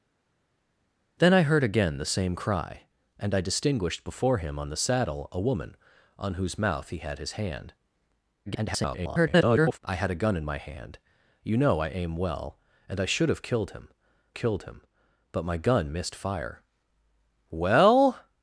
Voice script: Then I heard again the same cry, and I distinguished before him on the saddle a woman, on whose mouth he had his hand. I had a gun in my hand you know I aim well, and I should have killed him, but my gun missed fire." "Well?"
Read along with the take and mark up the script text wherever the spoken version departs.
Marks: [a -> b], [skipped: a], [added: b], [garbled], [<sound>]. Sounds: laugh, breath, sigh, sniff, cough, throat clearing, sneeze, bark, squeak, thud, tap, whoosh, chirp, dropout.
Then I heard again the same cry, and I distinguished before him on the saddle a woman, on whose mouth he had his hand. [garbled] I had a gun in my hand you know I aim well, and I should have killed him, [added: killed him] but my gun missed fire." "Well?"